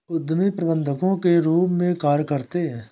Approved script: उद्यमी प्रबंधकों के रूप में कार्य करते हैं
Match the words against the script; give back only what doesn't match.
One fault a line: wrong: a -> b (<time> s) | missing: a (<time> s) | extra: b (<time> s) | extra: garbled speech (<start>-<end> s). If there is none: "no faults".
no faults